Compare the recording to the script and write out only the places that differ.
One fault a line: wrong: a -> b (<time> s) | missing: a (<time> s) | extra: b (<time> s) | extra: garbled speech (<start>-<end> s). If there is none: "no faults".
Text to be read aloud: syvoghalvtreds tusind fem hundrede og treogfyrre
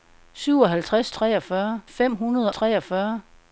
wrong: tusind -> treogfyrre (1.1 s)
missing: og (2.5 s)